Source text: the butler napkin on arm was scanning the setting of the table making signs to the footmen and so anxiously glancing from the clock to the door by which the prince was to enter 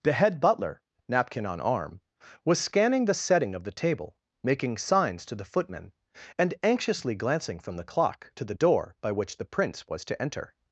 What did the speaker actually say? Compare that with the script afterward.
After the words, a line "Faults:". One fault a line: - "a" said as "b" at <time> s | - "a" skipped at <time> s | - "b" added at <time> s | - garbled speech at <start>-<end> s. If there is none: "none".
the head butler napkin on arm was scanning the setting of the table making signs to the footmen and anxiously glancing from the clock to the door by which the prince was to enter
Faults:
- "head" added at 0.1 s
- "so" skipped at 6.5 s